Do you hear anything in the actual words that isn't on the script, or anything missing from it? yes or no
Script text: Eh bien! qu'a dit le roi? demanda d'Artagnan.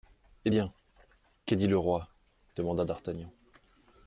no